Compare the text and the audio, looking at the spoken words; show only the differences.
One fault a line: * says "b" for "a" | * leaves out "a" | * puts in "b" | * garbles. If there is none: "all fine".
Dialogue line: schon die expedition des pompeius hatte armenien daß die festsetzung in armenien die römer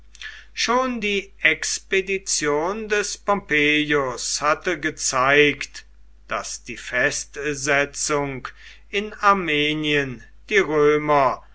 * says "gezeigt" for "armenien"